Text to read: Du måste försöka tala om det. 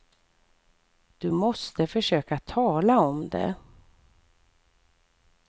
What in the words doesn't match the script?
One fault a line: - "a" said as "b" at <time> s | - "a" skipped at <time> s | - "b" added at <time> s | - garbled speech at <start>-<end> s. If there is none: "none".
none